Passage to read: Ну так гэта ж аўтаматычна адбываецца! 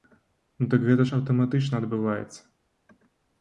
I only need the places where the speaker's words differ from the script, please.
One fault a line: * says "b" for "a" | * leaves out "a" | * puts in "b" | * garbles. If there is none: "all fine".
all fine